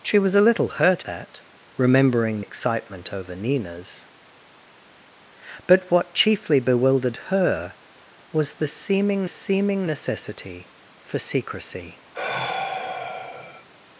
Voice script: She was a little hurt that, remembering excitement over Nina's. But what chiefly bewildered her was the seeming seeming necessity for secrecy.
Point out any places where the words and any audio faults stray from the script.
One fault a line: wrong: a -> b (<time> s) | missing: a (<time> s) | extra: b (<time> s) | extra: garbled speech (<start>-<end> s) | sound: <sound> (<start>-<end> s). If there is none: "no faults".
sound: sigh (12.1-13.7 s)